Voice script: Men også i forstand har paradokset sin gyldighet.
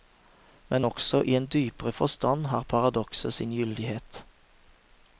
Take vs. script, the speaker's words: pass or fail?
fail